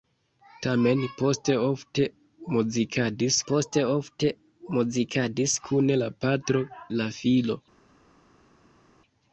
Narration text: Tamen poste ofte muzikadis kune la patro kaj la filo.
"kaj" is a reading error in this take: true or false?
true